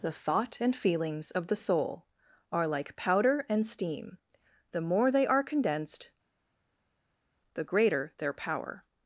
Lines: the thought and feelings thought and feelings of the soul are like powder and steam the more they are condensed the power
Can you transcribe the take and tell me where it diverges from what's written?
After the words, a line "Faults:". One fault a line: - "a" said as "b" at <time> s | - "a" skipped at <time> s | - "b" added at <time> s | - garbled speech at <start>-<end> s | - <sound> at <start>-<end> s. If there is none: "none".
the thought and feelings of the soul are like powder and steam the more they are condensed the greater their power
Faults:
- "thought and feelings" skipped at 1.3 s
- "greater their" added at 7.6 s